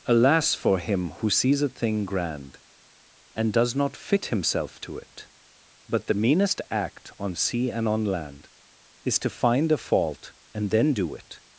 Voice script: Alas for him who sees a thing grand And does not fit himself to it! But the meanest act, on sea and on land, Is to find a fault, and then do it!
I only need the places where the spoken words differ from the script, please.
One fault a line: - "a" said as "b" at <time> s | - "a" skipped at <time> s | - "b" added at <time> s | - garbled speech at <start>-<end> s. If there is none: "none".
none